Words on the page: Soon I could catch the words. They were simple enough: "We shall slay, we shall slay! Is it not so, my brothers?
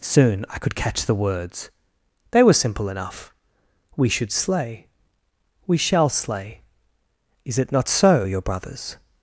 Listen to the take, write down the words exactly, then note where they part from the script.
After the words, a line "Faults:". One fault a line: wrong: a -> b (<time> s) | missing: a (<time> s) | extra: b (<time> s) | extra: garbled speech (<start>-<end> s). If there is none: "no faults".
Soon I could catch the words. They were simple enough: "We should slay, we shall slay! Is it not so, your brothers?
Faults:
wrong: shall -> should (4.1 s)
wrong: my -> your (8.2 s)